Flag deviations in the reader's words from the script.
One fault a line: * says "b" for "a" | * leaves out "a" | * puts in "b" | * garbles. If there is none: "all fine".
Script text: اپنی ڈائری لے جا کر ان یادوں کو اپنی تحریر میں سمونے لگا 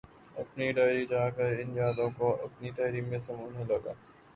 * leaves out "لے"